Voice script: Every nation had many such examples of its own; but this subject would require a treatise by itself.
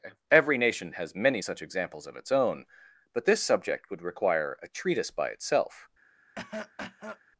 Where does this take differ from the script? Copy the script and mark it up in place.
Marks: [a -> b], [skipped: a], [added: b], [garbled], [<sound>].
Every nation [had -> has] many such examples of its own; but this subject would require a treatise by itself. [cough]